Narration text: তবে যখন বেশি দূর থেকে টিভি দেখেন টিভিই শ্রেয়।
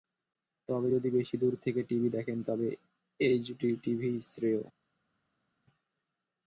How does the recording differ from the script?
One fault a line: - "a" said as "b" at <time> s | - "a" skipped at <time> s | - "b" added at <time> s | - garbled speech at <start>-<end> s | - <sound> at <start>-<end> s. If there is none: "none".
- "যখন" said as "যদি" at 0.9 s
- "তবে এইচডি" added at 2.4 s